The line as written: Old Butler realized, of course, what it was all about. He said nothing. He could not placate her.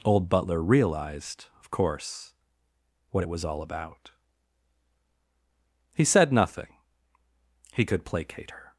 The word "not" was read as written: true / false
false